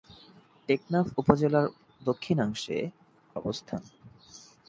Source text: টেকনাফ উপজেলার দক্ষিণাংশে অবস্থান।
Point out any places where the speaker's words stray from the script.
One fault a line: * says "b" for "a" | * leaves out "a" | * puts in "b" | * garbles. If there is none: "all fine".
all fine